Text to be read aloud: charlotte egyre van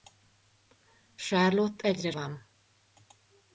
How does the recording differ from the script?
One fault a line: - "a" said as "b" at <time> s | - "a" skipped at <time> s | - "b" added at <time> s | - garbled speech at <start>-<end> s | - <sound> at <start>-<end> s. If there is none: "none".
none